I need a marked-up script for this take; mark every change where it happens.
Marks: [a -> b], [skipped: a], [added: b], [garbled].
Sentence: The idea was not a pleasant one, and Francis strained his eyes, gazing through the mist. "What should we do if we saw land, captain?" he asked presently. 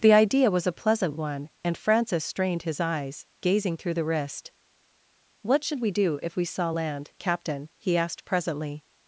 The idea was [skipped: not] a pleasant one, and Francis strained his eyes, gazing through the [mist. -> wrist] "What should we do if we saw land, captain?" he asked presently.